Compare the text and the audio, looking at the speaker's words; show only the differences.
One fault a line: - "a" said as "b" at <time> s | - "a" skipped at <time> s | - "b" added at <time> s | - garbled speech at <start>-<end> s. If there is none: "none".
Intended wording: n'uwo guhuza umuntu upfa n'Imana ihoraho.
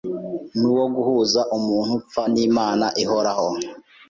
none